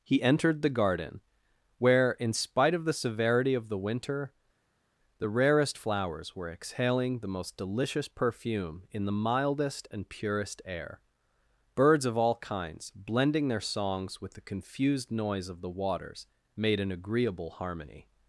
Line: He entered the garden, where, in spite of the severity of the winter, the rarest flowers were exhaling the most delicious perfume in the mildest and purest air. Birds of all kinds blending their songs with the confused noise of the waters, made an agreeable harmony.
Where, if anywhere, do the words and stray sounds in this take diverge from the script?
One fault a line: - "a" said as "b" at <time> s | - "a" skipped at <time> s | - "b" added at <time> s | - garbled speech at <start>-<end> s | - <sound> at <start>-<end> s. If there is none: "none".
none